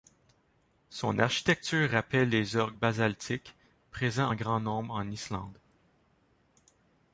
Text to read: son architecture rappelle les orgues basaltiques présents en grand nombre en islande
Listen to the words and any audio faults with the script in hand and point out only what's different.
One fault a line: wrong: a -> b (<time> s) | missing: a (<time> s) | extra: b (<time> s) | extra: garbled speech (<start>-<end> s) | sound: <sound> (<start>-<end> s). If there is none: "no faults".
no faults